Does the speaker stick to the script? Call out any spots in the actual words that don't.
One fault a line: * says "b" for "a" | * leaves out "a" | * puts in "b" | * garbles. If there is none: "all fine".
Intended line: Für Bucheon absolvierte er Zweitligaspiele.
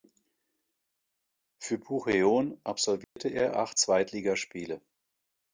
* puts in "acht"